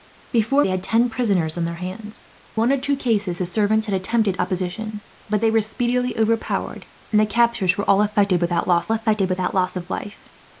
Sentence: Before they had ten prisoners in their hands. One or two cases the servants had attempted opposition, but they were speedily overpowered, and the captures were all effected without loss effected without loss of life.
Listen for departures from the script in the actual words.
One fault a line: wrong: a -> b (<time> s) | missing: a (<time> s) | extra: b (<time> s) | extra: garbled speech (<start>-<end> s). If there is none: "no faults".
no faults